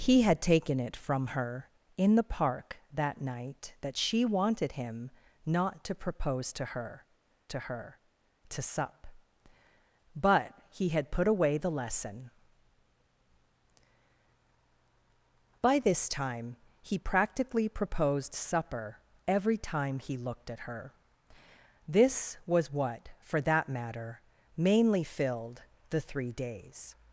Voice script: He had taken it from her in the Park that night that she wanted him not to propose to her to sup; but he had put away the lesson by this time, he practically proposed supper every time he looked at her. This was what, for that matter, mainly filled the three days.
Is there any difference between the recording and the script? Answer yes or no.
yes